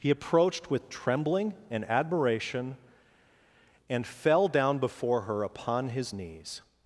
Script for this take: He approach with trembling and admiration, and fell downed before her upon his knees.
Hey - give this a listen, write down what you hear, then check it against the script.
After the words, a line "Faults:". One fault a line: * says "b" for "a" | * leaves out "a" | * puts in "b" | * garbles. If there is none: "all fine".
He approached with trembling and admiration, and fell down before her upon his knees.
Faults:
* says "approached" for "approach"
* says "down" for "downed"